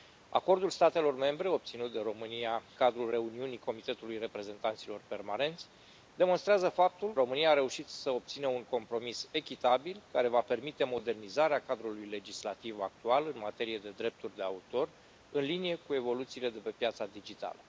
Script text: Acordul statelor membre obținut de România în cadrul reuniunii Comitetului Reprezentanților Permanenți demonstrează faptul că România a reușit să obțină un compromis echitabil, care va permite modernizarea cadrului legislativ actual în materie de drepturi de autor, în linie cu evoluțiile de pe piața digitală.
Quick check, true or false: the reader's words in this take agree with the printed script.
false